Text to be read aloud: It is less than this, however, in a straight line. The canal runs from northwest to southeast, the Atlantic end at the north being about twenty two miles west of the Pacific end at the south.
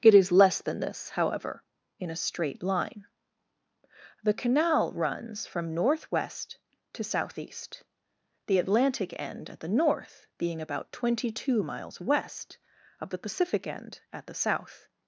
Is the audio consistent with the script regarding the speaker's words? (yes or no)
yes